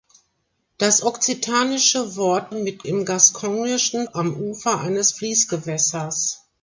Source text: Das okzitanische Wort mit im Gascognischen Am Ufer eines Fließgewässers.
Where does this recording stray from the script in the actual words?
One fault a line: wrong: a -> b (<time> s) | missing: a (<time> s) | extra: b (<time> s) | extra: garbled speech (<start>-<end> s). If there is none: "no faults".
no faults